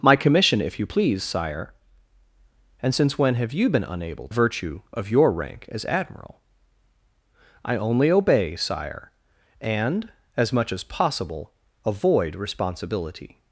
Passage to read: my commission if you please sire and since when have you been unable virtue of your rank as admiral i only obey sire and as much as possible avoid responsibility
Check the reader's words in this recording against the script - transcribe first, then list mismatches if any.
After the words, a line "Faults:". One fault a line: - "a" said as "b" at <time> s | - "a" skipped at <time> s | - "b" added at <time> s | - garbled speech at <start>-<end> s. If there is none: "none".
my commission if you please sire and since when have you been unable virtue of your rank as admiral i only obey sire and as much as possible avoid responsibility
Faults:
none